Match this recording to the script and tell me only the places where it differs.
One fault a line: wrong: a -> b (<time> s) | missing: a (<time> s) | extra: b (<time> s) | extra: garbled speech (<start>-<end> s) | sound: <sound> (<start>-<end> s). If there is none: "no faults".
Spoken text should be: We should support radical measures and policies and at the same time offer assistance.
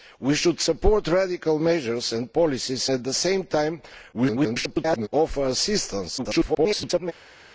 missing: and (2.9 s)
extra: garbled speech (4.1-5.1 s)
extra: garbled speech (6.2-7.1 s)